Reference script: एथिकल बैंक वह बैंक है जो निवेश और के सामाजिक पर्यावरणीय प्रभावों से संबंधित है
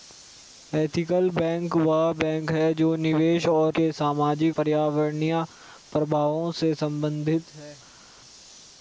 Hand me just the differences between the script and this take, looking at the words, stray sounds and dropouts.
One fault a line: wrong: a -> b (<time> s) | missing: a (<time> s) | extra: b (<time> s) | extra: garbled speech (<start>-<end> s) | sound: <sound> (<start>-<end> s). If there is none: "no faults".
no faults